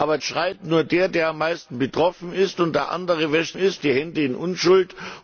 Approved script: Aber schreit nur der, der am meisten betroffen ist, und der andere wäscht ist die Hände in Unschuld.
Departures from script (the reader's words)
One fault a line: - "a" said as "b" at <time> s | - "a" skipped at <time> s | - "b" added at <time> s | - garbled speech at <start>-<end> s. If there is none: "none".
none